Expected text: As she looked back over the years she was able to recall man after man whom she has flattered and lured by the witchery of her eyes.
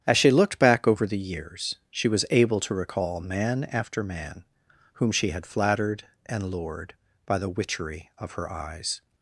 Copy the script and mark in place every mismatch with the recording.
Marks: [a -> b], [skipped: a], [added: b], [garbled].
As she looked back over the years she was able to recall man after man whom she [has -> had] flattered and lured by the witchery of her eyes.